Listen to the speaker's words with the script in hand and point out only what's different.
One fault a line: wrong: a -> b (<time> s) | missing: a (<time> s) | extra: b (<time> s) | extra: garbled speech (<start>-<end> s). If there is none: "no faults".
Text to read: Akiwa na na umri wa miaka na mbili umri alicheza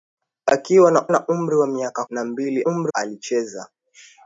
no faults